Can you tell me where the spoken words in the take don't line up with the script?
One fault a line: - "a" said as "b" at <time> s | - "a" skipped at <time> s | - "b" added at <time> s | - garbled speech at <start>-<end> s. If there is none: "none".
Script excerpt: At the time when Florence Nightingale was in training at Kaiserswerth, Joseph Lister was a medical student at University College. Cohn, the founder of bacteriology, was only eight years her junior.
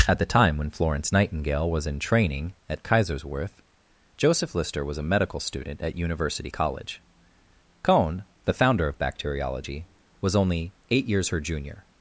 none